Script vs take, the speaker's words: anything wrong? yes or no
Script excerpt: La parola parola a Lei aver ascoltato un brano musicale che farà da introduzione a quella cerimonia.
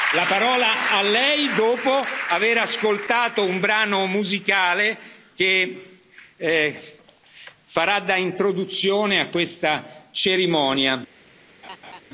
yes